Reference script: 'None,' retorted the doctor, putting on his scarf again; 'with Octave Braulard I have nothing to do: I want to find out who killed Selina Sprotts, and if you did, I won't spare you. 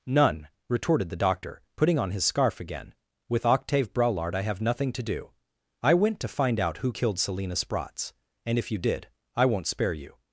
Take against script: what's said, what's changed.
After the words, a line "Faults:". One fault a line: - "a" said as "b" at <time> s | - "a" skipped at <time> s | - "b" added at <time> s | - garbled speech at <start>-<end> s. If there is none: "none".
'None,' retorted the doctor, putting on his scarf again; 'with Octave Braulard I have nothing to do: I went to find out who killed Selina Sprotts, and if you did, I won't spare you.
Faults:
- "want" said as "went" at 5.9 s